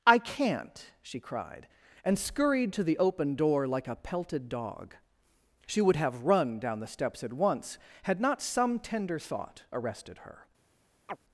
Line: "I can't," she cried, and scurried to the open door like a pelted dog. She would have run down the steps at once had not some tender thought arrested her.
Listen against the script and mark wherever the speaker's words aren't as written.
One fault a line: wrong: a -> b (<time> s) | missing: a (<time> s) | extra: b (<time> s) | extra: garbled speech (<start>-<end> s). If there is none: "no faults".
no faults